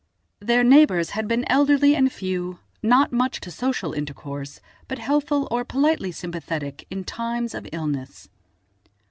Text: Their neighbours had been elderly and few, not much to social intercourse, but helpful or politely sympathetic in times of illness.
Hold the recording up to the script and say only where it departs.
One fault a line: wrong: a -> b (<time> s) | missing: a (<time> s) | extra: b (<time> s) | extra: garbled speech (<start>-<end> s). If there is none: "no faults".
no faults